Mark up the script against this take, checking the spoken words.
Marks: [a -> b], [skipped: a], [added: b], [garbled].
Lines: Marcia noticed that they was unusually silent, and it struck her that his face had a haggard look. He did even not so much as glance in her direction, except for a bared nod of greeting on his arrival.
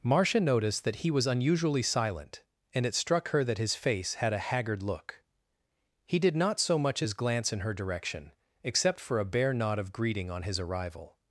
Marcia noticed that [they -> he] was unusually silent, and it struck her that his face had a haggard look. He did [skipped: even] not so much as glance in her direction, except for a [bared -> bare] nod of greeting on his arrival.